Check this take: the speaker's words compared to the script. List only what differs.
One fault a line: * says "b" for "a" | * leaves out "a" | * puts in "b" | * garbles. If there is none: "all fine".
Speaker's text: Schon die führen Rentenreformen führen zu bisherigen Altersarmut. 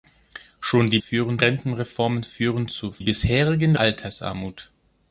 all fine